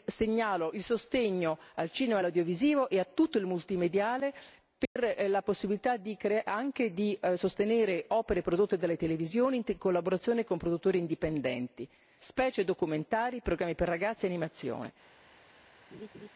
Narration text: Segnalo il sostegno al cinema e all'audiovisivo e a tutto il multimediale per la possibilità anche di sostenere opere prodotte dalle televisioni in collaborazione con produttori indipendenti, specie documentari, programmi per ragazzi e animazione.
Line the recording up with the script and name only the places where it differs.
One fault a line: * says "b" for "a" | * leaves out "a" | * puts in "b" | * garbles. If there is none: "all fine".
all fine